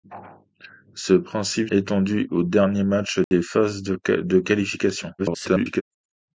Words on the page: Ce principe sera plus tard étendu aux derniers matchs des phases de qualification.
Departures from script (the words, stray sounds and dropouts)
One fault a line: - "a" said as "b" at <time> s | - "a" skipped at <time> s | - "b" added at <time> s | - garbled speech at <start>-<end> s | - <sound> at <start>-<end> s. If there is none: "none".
- "sera plus tard" skipped at 1.7 s
- dropout at 3.2-3.3 s
- garbled speech at 5.2-5.8 s